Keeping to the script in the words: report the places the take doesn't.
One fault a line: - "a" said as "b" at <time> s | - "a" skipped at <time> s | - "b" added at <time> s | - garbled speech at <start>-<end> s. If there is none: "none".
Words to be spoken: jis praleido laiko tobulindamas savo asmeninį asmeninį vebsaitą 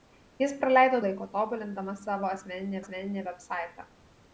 none